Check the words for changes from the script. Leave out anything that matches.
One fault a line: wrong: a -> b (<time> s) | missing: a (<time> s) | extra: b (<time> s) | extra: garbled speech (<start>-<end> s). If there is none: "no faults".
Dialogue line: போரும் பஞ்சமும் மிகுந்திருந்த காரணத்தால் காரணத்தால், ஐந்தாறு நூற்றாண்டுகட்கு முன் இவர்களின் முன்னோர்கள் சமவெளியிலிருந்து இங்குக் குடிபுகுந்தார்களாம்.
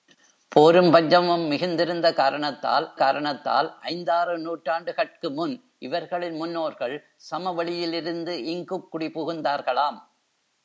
no faults